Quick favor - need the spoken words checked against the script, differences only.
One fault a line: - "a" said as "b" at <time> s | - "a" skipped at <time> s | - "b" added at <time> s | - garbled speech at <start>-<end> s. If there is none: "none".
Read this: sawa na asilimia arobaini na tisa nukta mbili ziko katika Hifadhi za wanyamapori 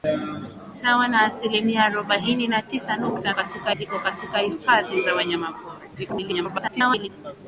- "mbili" said as "katika" at 3.3 s
- garbled speech at 5.9-7.1 s